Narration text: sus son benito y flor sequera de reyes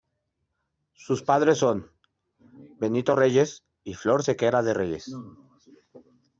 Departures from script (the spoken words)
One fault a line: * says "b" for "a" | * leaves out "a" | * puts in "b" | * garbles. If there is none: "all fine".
* puts in "padres"
* puts in "reyes"